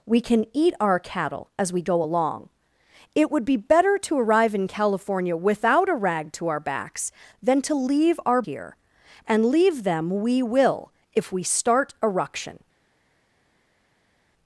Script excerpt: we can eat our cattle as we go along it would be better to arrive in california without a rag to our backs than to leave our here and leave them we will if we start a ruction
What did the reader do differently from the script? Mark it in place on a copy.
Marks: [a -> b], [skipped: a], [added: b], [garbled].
we can eat our cattle as we go along it would be better to arrive in california without a rag to our backs than to leave our here and leave them we will if we start a ruction